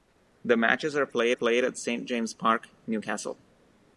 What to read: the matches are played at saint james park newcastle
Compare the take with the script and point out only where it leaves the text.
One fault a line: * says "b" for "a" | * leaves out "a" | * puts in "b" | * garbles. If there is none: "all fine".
* puts in "played"